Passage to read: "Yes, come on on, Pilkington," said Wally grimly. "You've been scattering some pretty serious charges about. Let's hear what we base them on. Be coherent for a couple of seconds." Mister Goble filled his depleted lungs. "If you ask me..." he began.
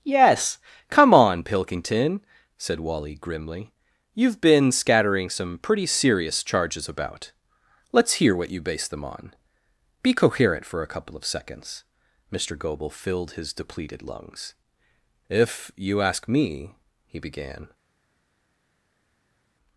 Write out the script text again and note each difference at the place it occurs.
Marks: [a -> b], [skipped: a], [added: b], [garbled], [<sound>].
"Yes, come on [skipped: on,] Pilkington," said Wally grimly. "You've been scattering some pretty serious charges about. Let's hear what [we -> you] base them on. Be coherent for a couple of seconds." Mister Goble filled his depleted lungs. "If you ask me..." he began.